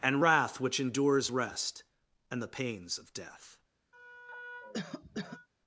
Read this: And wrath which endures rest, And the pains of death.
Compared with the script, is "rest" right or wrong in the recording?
right